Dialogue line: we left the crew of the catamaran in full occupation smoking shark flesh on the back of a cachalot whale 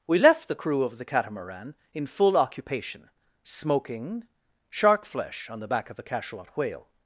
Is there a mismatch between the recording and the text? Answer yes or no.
no